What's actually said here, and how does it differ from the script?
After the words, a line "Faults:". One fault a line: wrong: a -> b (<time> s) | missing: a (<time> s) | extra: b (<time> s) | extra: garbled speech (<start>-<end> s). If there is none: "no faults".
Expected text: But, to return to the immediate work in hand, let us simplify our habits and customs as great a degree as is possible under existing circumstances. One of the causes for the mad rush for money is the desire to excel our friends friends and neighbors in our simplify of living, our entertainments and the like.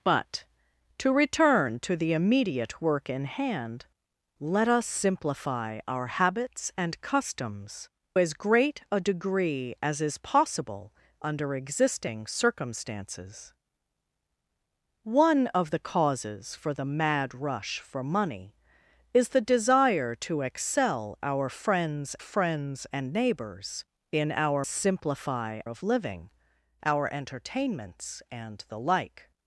But, to return to the immediate work in hand, let us simplify our habits and customs as great a degree as is possible under existing circumstances. One of the causes for the mad rush for money is the desire to excel our friends friends and neighbors in our simplify of living, our entertainments and the like.
Faults:
no faults